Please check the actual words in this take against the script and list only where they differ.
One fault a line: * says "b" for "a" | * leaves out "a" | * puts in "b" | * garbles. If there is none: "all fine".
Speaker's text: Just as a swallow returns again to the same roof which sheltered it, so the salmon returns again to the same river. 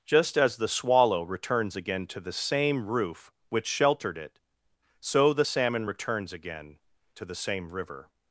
* says "the" for "a"